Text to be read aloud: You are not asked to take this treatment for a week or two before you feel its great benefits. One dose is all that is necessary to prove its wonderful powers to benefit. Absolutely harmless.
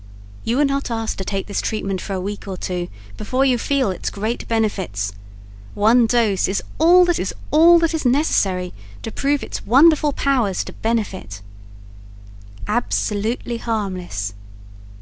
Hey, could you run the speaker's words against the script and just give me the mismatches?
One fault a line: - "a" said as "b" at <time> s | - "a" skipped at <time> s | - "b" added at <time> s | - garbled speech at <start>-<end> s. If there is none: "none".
- "all that is" added at 7.5 s